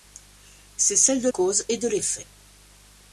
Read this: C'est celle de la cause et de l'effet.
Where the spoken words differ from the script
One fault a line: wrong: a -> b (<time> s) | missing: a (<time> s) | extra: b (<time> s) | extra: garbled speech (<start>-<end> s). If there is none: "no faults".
missing: la (1.3 s)